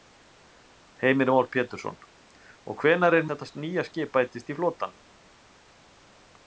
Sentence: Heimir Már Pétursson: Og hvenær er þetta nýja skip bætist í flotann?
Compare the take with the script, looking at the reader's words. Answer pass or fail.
pass